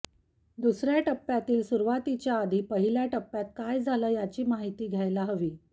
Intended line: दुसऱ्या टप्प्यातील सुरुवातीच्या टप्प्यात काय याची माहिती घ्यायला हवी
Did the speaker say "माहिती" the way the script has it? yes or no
yes